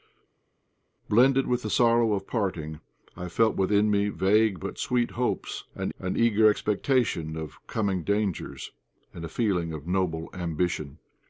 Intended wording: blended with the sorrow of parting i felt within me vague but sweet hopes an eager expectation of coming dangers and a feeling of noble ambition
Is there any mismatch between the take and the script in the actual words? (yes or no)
yes